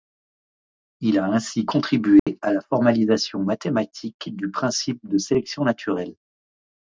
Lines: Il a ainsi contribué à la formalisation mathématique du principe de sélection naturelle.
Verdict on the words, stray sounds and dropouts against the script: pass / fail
fail